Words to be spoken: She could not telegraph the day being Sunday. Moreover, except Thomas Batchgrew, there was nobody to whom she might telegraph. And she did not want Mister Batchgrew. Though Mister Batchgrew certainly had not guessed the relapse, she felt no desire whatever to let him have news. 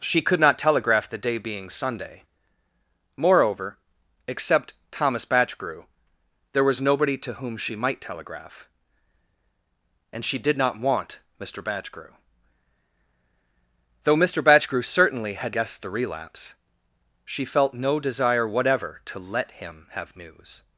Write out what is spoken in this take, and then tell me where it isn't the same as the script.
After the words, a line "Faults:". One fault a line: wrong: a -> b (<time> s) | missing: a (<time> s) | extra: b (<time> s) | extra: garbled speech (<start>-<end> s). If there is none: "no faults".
She could not telegraph the day being Sunday. Moreover, except Thomas Batchgrew, there was nobody to whom she might telegraph. And she did not want Mister Batchgrew. Though Mister Batchgrew certainly had guessed the relapse, she felt no desire whatever to let him have news.
Faults:
missing: not (15.5 s)